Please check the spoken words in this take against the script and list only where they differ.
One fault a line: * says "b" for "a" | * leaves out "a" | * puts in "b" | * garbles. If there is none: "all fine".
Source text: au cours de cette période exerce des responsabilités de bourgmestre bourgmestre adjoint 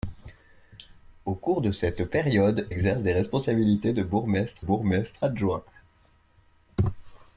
all fine